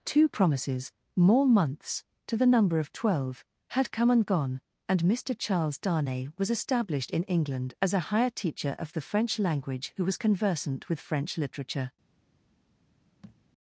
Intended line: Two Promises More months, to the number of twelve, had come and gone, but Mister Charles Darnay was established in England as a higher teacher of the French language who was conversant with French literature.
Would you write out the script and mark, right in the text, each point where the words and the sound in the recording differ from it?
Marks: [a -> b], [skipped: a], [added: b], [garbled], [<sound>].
Two Promises More months, to the number of twelve, had come and gone, [but -> and] Mister Charles Darnay was established in England as a higher teacher of the French language who was conversant with French literature. [thud]